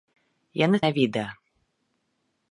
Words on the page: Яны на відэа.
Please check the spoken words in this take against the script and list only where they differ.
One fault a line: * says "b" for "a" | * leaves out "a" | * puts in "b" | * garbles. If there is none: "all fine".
all fine